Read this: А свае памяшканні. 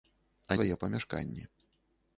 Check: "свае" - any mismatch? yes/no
no